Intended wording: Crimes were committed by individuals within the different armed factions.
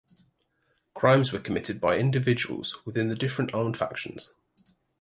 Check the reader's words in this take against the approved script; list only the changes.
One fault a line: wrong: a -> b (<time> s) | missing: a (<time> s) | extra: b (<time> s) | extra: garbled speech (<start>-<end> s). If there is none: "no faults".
no faults